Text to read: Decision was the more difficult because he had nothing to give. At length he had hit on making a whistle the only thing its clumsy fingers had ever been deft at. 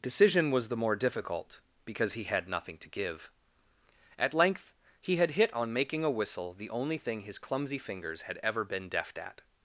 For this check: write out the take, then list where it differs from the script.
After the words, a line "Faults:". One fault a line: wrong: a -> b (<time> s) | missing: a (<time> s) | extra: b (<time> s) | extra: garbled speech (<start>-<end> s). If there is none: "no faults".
Decision was the more difficult because he had nothing to give. At length he had hit on making a whistle the only thing his clumsy fingers had ever been deft at.
Faults:
wrong: its -> his (7.2 s)